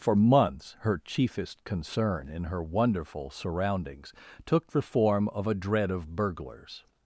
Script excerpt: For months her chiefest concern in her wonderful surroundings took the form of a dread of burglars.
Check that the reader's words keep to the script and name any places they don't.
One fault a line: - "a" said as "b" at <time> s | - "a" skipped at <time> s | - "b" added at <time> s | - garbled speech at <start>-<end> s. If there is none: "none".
none